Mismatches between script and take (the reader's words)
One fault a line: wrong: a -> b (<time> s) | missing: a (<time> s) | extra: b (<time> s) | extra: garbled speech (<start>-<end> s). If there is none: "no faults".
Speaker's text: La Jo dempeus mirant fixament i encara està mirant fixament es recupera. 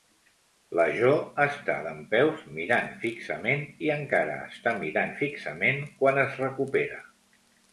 extra: està (1.4 s)
extra: quan (6.0 s)